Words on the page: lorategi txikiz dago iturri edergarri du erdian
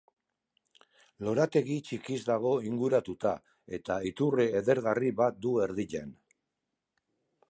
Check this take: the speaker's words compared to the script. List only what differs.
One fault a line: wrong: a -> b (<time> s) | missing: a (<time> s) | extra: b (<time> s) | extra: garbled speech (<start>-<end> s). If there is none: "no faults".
extra: inguratuta eta (2.7 s)
extra: bat (5.2 s)